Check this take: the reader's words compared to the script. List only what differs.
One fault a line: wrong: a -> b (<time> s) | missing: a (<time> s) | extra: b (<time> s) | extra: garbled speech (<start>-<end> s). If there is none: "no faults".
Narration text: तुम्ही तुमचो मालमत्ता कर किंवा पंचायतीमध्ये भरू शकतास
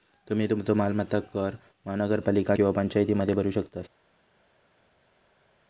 extra: महानगरपालिका (1.9 s)